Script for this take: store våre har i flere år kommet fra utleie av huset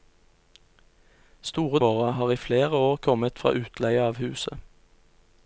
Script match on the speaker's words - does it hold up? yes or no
yes